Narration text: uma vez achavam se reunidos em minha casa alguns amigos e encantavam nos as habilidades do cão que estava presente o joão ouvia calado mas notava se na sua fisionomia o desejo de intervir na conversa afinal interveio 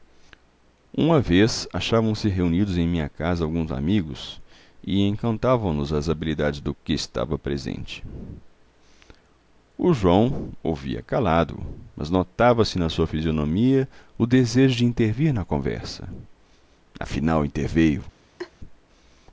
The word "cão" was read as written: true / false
false